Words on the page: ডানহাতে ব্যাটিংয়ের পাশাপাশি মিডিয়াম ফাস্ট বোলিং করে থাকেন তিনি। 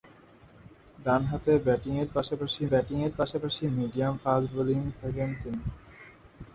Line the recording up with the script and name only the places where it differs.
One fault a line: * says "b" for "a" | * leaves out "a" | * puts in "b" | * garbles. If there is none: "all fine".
* puts in "ব্যাটিংয়ের পাশাপাশি"
* leaves out "করে"